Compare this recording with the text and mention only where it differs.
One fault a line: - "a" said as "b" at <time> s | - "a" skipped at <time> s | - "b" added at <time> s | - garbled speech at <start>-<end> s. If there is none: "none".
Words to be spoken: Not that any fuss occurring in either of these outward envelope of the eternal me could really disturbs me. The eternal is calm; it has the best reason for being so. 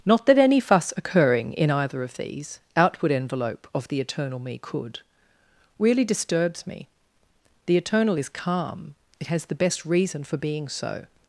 none